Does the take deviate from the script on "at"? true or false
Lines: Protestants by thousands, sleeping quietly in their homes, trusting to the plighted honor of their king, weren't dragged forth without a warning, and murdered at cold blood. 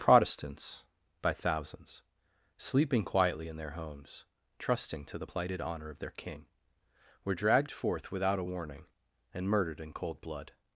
true